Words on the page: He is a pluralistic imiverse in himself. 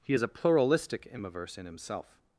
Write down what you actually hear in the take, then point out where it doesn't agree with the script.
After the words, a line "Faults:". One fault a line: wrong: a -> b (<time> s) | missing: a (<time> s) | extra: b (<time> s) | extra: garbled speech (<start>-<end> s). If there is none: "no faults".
He is a pluralistic imiverse in himself.
Faults:
no faults